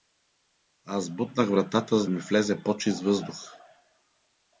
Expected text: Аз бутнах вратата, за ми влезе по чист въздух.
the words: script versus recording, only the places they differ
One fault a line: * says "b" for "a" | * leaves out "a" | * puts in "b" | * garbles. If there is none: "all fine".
all fine